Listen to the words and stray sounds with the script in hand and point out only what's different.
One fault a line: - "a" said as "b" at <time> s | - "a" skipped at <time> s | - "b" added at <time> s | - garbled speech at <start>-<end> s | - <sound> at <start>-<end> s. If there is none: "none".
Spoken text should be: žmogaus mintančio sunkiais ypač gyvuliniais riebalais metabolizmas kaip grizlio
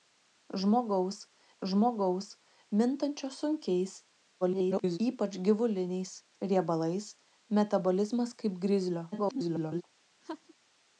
- "žmogaus" added at 1.7 s
- garbled speech at 4.4-5.0 s
- garbled speech at 9.1-9.8 s
- laugh at 10.2-10.5 s